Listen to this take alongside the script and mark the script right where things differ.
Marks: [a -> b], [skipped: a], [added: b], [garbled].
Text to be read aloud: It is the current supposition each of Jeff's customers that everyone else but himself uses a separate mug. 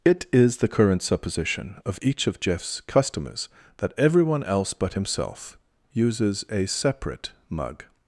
It is the current supposition [added: of] each of Jeff's customers that everyone else but himself uses a separate mug.